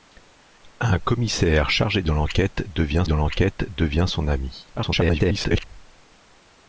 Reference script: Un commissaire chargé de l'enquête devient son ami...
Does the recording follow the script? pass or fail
fail